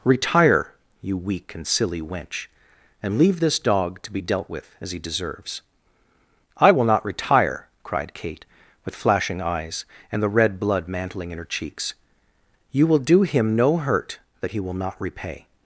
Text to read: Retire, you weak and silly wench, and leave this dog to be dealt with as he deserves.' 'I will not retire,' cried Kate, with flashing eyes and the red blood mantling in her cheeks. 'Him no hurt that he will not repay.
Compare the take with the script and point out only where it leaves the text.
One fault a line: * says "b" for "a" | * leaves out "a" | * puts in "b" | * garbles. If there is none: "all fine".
* puts in "You will do"